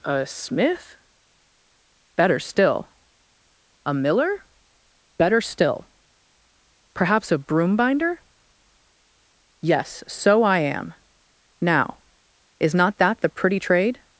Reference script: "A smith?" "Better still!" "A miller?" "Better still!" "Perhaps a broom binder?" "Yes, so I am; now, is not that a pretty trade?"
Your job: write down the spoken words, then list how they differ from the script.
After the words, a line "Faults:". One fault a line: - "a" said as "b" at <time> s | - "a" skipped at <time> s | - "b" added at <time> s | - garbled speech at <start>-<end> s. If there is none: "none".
"A smith?" "Better still!" "A miller?" "Better still!" "Perhaps a broom binder?" "Yes, so I am; now, is not that the pretty trade?"
Faults:
- "a" said as "the" at 13.2 s